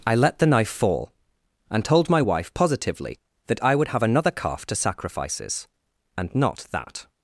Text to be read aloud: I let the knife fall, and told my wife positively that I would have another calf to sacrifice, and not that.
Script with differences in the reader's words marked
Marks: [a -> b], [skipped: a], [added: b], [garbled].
I let the knife fall, and told my wife positively that I would have another calf to [sacrifice, -> sacrifices] and not that.